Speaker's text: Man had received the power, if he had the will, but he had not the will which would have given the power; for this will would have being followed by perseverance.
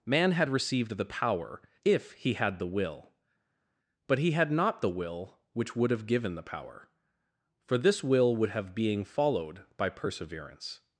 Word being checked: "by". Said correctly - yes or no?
yes